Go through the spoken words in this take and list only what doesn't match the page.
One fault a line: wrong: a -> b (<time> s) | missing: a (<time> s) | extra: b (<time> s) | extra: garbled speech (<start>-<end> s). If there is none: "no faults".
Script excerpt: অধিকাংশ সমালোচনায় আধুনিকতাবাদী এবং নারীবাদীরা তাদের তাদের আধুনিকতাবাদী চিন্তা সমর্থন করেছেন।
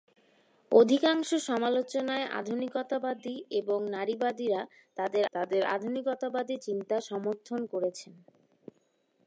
no faults